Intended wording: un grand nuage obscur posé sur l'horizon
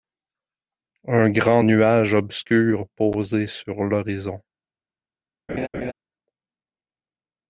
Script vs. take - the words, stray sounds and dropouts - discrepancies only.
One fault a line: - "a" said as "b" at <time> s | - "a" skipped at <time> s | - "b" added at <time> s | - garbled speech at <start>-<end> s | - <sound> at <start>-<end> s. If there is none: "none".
- laugh at 5.5-5.9 s